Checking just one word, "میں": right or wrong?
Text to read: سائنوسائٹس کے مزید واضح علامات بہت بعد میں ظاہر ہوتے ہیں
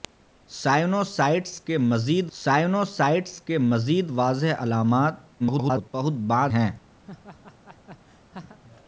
wrong